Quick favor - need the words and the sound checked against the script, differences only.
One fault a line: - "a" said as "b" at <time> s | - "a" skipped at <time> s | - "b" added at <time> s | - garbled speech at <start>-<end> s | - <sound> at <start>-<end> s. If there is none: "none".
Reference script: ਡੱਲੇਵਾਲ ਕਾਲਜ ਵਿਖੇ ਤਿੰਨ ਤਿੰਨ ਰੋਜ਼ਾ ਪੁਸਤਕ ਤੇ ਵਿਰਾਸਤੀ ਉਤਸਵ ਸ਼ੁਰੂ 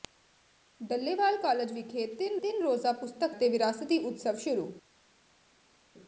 none